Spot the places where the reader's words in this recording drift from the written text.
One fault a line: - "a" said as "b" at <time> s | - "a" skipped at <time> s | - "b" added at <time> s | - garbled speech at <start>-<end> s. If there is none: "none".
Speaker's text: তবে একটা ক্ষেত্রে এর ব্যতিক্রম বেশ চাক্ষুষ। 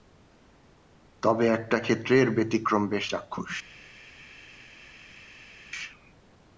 none